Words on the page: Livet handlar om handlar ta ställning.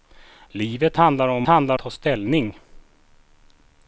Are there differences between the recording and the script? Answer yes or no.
no